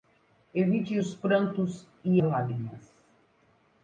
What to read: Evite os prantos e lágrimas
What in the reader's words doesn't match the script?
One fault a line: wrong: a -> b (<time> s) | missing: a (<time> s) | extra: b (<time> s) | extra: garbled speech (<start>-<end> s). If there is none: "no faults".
no faults